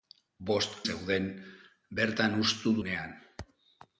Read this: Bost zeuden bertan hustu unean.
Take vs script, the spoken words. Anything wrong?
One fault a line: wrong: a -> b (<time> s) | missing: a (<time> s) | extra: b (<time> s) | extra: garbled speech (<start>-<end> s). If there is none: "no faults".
no faults